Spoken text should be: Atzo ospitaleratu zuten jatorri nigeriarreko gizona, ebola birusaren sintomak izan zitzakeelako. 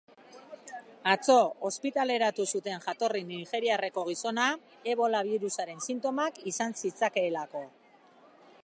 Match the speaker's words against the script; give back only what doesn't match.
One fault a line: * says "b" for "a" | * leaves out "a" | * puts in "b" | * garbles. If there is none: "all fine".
all fine